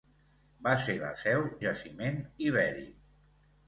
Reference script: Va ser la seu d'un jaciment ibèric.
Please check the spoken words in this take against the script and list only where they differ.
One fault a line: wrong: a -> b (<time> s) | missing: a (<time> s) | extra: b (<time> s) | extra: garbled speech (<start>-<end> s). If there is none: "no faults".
missing: d'un (1.4 s)